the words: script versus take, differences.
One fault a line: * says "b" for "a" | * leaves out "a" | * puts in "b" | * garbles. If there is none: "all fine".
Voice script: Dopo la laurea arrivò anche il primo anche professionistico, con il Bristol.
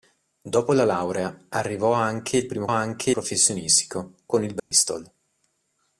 all fine